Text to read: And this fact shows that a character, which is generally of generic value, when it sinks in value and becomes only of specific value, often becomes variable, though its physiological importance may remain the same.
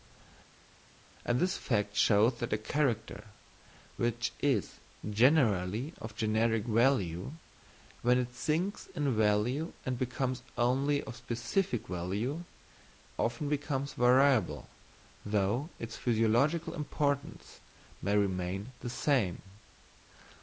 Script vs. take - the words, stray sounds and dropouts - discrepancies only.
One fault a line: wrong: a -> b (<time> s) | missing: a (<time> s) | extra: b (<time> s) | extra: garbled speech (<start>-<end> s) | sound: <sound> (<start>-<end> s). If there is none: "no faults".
no faults